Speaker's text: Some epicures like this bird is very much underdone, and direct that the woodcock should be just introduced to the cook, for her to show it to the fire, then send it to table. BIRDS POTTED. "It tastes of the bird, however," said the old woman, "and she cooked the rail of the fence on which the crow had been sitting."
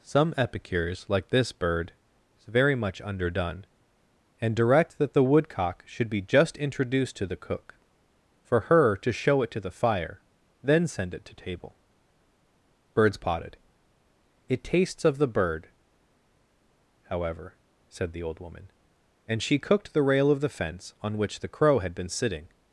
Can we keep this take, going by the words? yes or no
yes